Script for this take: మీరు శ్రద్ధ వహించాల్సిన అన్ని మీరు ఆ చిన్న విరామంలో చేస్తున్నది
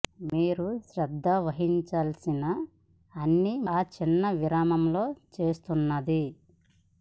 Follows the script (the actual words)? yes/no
no